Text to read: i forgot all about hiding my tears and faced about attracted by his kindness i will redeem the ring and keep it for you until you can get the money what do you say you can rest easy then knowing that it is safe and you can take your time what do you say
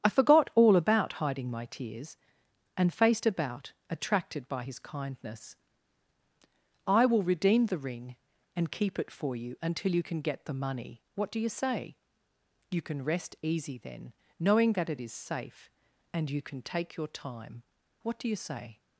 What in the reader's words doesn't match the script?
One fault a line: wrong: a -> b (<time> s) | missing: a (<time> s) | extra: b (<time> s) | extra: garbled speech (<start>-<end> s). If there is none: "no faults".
no faults